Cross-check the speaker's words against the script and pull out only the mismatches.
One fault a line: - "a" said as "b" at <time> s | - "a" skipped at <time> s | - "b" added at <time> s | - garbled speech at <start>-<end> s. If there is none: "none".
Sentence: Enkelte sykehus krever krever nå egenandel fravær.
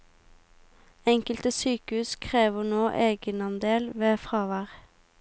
- "krever" skipped at 2.6 s
- "ved" added at 4.0 s